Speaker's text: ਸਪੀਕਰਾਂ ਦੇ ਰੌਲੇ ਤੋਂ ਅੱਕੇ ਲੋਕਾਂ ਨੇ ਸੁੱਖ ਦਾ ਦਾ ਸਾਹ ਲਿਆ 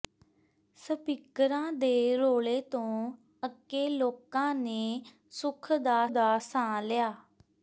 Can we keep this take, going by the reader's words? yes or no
yes